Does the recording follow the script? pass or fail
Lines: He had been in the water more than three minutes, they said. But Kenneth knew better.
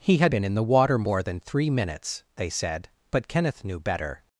pass